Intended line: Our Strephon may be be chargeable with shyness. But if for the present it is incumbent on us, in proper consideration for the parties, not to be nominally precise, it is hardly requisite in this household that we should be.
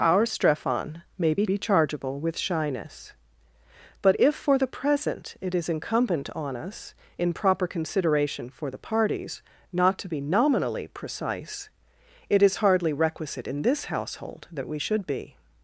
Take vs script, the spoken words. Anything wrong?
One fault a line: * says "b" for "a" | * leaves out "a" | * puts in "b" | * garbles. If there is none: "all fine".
all fine